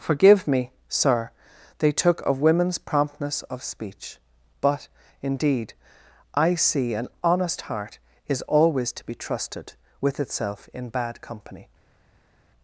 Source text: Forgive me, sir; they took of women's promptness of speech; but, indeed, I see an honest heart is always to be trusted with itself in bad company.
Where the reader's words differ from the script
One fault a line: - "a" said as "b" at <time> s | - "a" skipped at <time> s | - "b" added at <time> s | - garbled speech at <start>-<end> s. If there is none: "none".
none